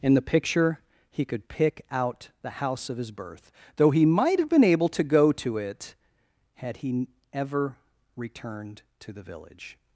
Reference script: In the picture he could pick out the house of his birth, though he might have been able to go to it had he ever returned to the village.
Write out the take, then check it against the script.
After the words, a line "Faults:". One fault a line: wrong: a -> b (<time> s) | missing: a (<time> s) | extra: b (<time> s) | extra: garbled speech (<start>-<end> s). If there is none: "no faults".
In the picture he could pick out the house of his birth, though he might have been able to go to it had he ever returned to the village.
Faults:
no faults